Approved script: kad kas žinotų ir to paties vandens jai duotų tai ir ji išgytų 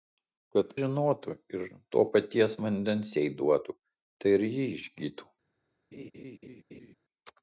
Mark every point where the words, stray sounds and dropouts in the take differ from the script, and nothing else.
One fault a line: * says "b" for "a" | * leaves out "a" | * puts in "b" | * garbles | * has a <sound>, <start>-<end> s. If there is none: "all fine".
* leaves out "kas"
* has a laugh, 5.9-7.0 s